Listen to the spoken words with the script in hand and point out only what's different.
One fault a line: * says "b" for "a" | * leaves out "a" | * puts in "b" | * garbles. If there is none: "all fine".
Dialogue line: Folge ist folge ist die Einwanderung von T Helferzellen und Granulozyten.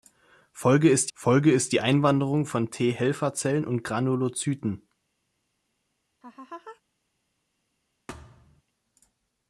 all fine